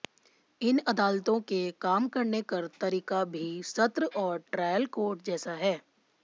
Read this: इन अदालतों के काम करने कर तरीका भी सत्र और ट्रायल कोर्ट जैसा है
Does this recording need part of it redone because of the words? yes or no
no